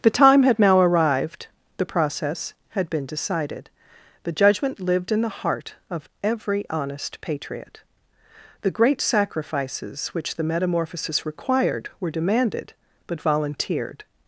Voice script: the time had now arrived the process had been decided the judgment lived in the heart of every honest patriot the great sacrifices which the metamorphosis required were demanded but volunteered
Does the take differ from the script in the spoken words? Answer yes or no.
no